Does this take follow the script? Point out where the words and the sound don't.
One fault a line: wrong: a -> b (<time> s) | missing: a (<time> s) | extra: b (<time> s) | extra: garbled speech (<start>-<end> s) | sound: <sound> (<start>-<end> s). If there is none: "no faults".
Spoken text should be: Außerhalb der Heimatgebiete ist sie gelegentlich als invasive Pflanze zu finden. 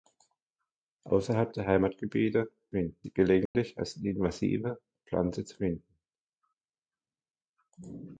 wrong: ist -> finden (2.7 s)
sound: dropout (3.5-3.5 s)